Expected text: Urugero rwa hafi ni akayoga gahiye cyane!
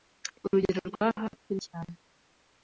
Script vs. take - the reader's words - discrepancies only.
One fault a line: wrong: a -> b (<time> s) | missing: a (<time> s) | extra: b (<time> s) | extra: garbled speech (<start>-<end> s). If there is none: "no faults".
missing: ni akayoga gahiye (1.5 s)